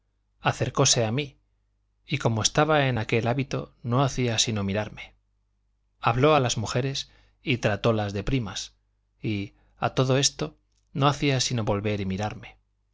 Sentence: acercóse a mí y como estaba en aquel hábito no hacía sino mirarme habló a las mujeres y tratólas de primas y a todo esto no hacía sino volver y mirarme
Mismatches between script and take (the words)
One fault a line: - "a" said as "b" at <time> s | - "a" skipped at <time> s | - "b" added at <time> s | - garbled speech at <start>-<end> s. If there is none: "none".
none